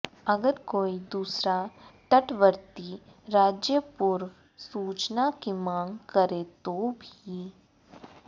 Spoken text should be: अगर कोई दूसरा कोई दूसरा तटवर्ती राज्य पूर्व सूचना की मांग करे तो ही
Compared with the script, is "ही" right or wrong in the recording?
wrong